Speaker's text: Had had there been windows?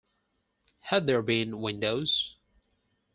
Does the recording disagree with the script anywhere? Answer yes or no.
yes